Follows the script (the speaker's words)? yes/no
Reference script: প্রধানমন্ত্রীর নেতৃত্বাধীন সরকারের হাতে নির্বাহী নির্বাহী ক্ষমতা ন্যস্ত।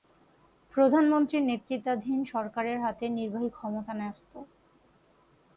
no